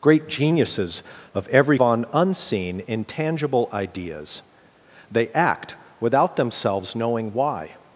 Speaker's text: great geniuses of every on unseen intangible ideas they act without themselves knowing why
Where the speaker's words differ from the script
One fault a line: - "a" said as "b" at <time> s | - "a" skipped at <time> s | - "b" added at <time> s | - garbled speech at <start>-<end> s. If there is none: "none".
none